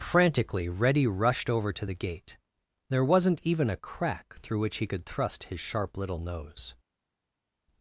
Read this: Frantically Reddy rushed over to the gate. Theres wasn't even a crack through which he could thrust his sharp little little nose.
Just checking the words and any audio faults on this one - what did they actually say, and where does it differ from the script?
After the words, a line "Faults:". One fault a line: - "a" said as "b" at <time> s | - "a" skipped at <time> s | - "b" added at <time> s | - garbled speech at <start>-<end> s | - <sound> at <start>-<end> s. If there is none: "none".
Frantically Reddy rushed over to the gate. There wasn't even a crack through which he could thrust his sharp little nose.
Faults:
- "Theres" said as "There" at 2.9 s
- "little" skipped at 6.2 s